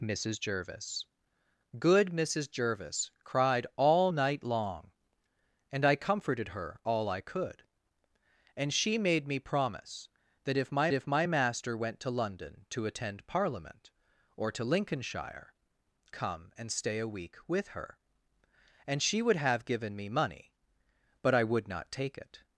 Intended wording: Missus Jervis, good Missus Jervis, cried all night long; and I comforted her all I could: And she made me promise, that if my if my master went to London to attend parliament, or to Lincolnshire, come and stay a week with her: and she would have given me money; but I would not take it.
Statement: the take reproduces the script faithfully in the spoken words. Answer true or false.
true